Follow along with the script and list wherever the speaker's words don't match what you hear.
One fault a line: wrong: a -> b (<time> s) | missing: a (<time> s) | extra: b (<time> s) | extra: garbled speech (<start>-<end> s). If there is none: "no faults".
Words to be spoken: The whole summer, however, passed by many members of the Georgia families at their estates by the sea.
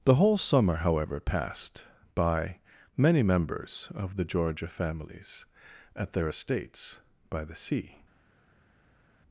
no faults